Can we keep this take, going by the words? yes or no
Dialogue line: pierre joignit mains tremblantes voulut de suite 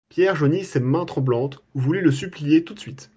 no